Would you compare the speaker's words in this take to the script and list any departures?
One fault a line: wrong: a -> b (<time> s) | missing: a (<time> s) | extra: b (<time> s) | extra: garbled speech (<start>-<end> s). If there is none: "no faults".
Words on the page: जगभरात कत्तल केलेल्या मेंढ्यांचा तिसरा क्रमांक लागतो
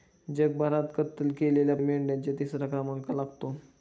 no faults